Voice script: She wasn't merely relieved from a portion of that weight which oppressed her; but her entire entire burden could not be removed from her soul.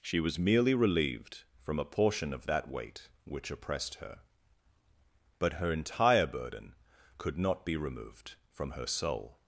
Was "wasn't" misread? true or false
true